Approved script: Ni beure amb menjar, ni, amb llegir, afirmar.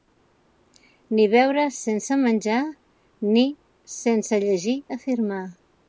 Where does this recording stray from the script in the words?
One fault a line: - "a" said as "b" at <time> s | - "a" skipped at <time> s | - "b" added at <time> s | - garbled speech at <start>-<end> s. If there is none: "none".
- "amb" said as "sense" at 1.8 s
- "amb" said as "sense" at 4.0 s